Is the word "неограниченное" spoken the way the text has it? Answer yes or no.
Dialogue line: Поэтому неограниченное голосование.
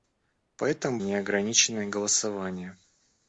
yes